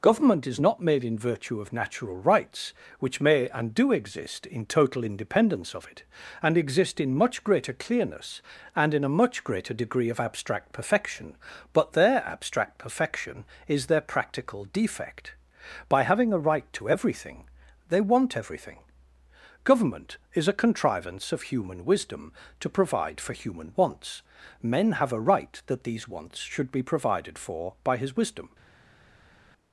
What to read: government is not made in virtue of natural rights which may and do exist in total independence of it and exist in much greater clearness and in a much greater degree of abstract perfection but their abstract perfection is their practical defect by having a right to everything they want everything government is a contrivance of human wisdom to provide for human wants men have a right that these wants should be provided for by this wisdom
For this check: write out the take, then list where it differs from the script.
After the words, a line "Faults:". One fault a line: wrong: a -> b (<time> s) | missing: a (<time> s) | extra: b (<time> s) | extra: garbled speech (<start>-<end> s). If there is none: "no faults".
government is not made in virtue of natural rights which may and do exist in total independence of it and exist in much greater clearness and in a much greater degree of abstract perfection but their abstract perfection is their practical defect by having a right to everything they want everything government is a contrivance of human wisdom to provide for human wants men have a right that these wants should be provided for by his wisdom
Faults:
wrong: this -> his (28.0 s)